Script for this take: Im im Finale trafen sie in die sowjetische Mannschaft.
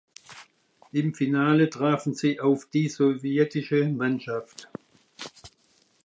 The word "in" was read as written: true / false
false